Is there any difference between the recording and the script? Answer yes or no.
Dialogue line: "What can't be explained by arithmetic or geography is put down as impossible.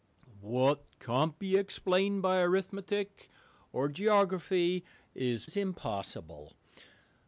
yes